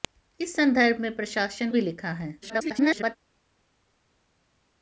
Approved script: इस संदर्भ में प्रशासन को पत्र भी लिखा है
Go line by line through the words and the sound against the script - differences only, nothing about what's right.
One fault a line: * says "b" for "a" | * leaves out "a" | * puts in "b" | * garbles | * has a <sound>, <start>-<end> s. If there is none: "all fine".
* leaves out "को पत्र"
* garbles